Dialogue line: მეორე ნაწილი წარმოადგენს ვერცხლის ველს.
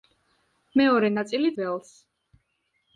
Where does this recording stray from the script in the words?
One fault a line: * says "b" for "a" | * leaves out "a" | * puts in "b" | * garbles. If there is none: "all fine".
* leaves out "წარმოადგენს ვერცხლის"